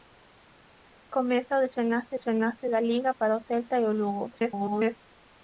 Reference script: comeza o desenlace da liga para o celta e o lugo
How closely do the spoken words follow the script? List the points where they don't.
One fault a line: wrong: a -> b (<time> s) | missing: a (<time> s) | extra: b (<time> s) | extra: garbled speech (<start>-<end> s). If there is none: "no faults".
extra: desenlace (2.1 s)
extra: garbled speech (4.3-5.0 s)